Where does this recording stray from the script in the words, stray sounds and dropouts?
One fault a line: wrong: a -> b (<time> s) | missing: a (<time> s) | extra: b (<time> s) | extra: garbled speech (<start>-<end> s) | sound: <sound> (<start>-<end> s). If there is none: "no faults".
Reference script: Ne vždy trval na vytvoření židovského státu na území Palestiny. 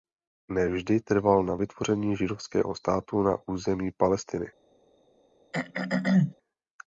sound: throat clearing (5.5-6.3 s)